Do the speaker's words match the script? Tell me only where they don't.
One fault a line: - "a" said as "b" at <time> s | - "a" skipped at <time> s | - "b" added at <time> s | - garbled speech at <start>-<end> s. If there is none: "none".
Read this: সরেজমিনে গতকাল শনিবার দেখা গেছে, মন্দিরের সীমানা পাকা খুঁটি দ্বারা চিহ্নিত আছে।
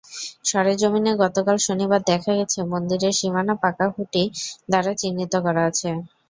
- "করা" added at 5.5 s